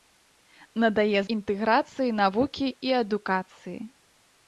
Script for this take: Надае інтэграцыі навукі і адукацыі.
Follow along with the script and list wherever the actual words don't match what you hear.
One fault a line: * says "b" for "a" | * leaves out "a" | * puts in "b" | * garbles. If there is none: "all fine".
all fine